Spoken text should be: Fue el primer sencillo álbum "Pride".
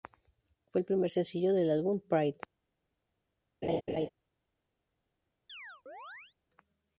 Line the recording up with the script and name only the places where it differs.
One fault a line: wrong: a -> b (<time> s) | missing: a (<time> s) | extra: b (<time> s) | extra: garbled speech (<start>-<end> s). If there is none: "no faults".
extra: del (1.5 s)